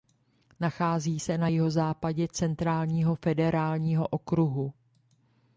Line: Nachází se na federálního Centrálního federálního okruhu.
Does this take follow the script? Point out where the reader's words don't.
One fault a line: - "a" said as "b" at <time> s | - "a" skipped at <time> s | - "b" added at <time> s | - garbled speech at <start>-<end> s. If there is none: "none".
- "federálního" said as "jihozápadě" at 1.5 s